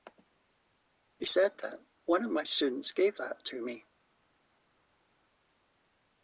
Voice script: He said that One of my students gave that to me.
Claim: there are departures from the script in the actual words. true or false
false